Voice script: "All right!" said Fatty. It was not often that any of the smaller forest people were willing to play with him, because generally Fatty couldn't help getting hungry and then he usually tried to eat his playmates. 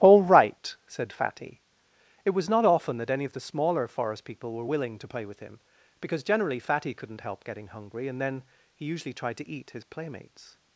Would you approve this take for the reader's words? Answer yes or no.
yes